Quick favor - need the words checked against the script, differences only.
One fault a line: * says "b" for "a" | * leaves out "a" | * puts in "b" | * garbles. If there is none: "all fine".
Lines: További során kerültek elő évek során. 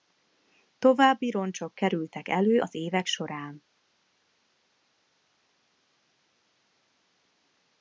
* says "roncsok" for "során"
* puts in "az"